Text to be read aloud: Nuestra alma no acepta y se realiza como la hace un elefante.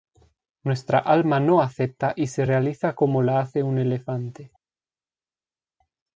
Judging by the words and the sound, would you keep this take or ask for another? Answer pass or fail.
pass